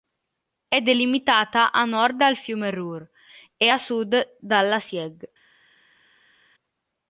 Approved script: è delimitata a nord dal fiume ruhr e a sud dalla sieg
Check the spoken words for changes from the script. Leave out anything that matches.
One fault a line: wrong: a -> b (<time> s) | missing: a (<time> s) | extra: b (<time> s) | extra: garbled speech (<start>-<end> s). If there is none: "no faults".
no faults